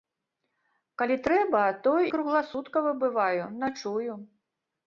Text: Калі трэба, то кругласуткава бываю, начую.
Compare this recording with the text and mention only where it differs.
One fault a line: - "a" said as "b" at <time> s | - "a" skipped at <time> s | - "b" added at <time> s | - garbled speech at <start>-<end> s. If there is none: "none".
none